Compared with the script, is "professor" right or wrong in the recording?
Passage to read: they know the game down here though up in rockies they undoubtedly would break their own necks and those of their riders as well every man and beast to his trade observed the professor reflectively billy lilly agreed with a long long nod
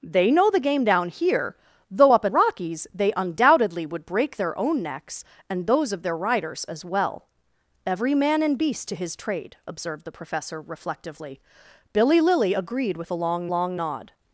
right